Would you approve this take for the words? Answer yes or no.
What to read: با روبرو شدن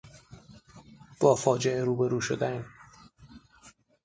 no